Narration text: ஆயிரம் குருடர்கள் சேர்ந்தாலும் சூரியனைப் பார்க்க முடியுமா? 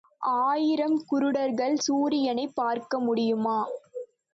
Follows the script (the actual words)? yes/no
no